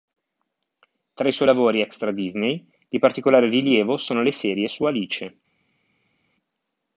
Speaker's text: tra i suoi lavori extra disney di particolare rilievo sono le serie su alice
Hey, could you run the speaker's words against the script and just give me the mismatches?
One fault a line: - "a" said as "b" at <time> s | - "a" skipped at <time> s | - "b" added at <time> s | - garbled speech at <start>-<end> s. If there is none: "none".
none